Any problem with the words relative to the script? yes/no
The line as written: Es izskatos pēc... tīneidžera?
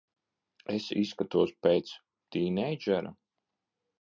no